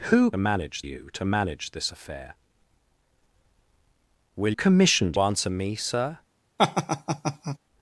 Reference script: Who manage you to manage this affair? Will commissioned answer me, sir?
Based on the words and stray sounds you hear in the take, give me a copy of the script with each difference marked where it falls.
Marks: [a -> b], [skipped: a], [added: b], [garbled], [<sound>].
Who manage you to manage this affair? Will commissioned answer me, sir? [laugh]